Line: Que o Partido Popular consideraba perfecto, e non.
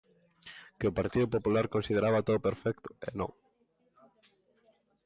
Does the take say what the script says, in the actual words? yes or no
no